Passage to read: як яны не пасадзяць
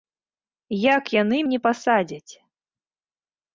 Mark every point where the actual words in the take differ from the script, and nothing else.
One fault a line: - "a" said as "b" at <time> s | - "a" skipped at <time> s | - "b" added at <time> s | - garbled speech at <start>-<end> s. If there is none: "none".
none